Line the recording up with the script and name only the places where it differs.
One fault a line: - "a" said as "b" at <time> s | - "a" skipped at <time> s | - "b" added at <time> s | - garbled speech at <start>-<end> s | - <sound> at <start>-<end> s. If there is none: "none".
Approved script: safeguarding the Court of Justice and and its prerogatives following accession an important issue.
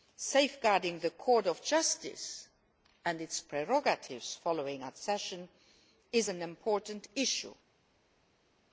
- "and" skipped at 3.2 s
- "is" added at 6.1 s